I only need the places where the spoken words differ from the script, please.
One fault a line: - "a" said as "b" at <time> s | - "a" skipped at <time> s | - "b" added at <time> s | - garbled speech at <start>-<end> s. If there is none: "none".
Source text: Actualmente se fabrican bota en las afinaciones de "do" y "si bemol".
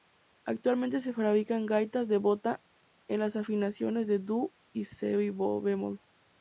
- "gaitas de" added at 1.7 s